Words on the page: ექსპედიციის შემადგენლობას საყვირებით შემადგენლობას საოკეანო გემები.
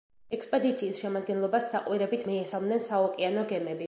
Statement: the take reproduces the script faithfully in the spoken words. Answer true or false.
false